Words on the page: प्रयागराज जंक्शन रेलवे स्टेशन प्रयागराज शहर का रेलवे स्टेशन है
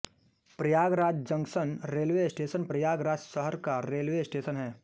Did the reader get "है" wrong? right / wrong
right